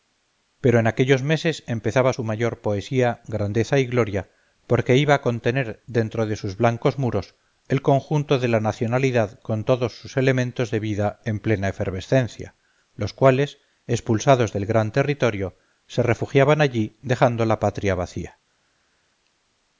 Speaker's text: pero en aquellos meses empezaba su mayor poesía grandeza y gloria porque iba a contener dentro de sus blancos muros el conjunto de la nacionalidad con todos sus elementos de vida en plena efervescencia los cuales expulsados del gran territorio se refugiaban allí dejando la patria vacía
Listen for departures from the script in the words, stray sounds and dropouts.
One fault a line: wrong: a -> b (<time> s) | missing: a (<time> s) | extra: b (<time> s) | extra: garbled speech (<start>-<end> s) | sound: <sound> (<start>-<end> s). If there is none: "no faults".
no faults